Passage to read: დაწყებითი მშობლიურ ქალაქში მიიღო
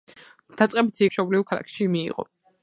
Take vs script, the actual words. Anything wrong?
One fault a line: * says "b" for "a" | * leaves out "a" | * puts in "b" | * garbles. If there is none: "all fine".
all fine